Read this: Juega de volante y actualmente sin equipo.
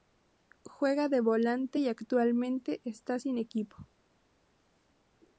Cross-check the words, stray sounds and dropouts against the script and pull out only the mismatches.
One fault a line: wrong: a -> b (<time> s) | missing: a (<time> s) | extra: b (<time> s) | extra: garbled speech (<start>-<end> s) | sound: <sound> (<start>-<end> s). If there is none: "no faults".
extra: está (2.8 s)